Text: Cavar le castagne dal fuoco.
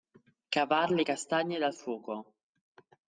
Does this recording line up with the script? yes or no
yes